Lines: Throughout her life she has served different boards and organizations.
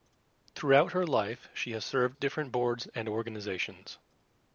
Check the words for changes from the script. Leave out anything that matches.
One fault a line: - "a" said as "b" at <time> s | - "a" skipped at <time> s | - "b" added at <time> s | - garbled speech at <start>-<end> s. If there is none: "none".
none